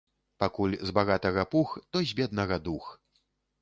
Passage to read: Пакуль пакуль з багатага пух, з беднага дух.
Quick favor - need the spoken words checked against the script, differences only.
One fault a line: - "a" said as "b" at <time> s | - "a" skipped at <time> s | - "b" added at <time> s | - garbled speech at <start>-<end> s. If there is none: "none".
- "пакуль" skipped at 0.7 s
- "то" added at 1.9 s